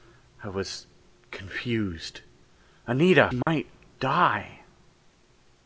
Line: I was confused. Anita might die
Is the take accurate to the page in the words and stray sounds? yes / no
no